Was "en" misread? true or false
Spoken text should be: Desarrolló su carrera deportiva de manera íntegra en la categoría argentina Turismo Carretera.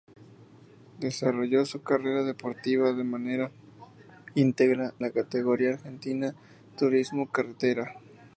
true